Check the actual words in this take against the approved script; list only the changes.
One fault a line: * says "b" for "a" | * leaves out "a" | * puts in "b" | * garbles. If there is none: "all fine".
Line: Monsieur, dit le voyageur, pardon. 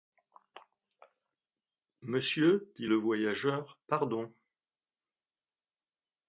all fine